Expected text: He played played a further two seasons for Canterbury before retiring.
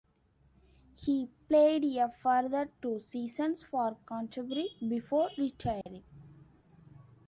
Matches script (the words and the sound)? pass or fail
fail